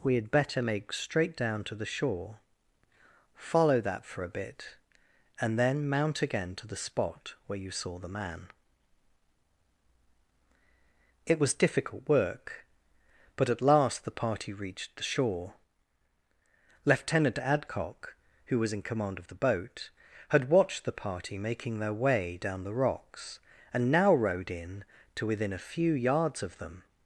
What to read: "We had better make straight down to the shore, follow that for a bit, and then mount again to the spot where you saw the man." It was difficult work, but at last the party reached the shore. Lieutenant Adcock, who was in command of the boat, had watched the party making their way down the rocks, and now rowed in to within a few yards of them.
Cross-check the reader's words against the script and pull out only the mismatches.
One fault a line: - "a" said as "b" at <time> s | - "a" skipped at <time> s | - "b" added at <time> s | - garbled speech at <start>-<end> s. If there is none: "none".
none